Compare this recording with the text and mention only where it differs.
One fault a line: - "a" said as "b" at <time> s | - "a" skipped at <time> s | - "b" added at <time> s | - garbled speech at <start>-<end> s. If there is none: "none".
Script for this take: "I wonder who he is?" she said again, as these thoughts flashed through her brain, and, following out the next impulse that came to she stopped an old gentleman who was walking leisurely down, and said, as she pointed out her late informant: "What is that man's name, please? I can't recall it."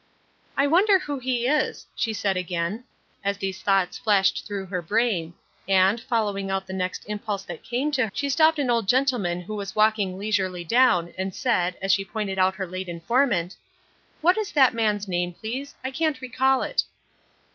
none